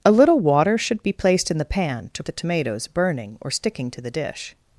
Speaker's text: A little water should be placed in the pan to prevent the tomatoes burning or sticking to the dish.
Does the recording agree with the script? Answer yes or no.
no